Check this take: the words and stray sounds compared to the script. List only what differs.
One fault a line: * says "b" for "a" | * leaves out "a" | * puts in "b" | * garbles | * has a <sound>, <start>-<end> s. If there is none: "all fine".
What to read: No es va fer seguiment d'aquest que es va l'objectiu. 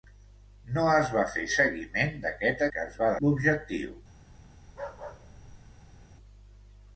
* has a bark, 4.6-6.0 s